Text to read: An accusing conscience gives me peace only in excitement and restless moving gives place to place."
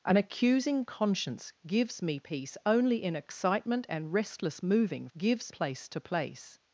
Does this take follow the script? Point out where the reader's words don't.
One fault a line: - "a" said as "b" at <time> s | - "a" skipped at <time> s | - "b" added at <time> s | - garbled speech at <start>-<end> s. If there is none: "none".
none